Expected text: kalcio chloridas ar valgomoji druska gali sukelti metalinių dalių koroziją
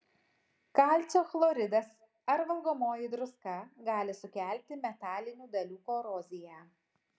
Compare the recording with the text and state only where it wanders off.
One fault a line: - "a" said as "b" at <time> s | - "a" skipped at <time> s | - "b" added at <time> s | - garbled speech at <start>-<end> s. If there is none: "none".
none